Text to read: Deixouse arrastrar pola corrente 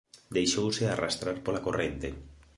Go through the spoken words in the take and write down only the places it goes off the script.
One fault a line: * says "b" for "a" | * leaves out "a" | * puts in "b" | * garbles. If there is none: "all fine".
all fine